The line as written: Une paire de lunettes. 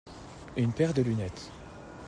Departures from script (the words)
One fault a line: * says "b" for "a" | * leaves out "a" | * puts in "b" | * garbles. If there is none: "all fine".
all fine